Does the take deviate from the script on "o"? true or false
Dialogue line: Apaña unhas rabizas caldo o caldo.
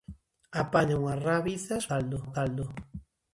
false